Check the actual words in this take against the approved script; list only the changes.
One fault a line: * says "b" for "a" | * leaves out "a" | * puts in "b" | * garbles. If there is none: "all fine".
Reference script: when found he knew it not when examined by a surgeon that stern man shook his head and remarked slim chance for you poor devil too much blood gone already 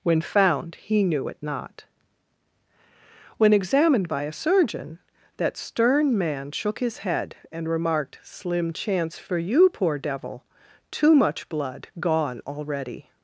all fine